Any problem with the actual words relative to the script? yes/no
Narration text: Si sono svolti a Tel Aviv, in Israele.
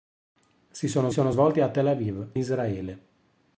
yes